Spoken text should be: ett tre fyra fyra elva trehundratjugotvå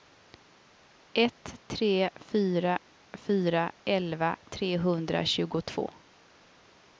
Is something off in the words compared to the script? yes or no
no